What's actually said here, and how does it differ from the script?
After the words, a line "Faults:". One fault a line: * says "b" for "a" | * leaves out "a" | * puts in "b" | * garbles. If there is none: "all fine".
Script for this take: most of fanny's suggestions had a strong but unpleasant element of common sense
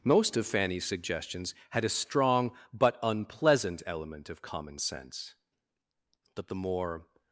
most of fanny's suggestions had a strong but unpleasant element of common sense but the more
Faults:
* puts in "but the more"